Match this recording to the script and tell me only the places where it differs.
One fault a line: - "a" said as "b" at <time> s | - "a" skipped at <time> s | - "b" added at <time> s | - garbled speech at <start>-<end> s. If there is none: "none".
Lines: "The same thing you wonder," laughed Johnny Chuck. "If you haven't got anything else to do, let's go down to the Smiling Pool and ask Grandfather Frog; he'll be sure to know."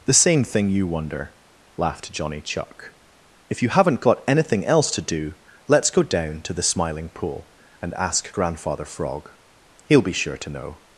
none